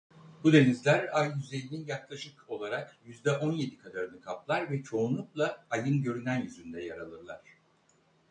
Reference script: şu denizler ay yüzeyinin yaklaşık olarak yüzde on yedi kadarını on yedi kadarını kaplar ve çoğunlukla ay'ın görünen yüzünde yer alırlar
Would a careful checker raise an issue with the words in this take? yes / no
yes